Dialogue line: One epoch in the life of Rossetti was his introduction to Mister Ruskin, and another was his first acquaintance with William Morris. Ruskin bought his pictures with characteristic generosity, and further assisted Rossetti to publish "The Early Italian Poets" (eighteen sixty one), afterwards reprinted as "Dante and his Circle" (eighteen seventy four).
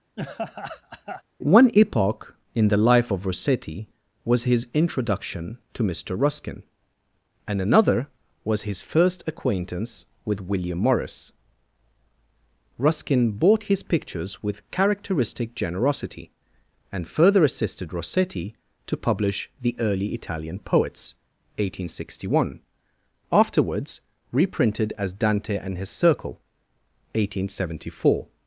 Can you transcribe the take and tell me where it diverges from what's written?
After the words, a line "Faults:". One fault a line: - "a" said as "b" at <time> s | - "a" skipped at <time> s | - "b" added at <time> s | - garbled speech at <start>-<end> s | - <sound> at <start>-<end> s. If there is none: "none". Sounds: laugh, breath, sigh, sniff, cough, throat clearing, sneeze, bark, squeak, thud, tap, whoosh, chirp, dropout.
One epoch in the life of Rossetti was his introduction to Mister Ruskin, and another was his first acquaintance with William Morris. Ruskin bought his pictures with characteristic generosity, and further assisted Rossetti to publish "The Early Italian Poets" (eighteen sixty one), afterwards reprinted as "Dante and his Circle" (eighteen seventy four).
Faults:
- laugh at 0.2-1.2 s